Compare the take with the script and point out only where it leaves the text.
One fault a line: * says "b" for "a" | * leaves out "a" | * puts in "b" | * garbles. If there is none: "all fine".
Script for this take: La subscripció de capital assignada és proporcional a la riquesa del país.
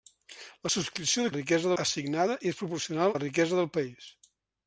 * says "riquesa" for "capital"
* leaves out "a"